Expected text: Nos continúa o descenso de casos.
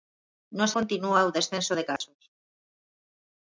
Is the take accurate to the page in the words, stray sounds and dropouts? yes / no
no